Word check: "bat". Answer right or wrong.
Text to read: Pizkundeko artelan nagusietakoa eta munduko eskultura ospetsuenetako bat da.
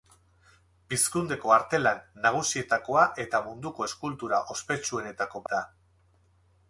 wrong